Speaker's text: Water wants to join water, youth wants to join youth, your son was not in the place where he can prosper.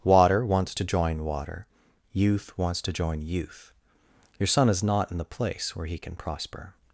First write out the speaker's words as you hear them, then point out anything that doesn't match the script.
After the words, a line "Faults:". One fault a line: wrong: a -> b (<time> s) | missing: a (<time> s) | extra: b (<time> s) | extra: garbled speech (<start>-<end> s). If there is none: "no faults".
Water wants to join water, youth wants to join youth, your son is not in the place where he can prosper.
Faults:
wrong: was -> is (4.7 s)